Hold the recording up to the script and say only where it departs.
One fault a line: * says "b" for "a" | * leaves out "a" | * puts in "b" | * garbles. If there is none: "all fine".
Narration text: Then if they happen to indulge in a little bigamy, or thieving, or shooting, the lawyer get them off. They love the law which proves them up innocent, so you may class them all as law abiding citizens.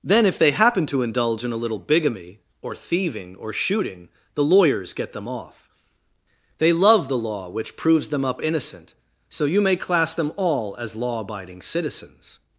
* says "lawyers" for "lawyer"